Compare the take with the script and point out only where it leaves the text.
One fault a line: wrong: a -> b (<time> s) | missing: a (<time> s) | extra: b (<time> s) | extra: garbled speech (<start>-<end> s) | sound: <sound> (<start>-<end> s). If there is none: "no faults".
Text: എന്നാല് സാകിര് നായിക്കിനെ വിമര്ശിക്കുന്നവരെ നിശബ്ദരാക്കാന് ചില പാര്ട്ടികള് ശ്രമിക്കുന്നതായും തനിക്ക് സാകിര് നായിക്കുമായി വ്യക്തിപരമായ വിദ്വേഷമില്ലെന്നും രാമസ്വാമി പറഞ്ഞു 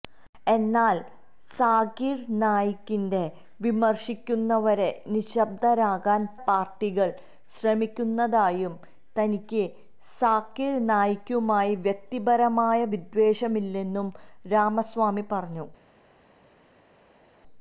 missing: ചില (6.3 s)